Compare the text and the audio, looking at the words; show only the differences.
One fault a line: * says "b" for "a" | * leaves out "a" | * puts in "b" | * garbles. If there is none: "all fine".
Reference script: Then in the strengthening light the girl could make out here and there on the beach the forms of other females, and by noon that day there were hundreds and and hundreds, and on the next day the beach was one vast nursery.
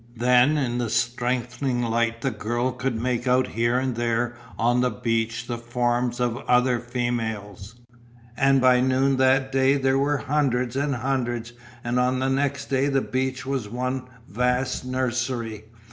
* leaves out "and"